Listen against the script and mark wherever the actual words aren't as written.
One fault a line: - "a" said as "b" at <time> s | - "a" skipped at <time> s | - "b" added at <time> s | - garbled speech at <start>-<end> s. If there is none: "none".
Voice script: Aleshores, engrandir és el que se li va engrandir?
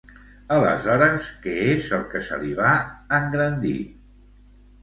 - "engrandir" said as "què" at 1.4 s